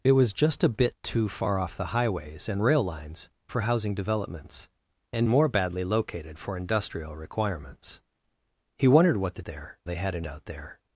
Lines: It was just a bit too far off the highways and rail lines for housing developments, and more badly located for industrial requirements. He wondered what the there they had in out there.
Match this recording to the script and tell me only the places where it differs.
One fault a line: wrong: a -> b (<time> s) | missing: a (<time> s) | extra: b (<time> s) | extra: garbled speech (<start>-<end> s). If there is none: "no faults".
no faults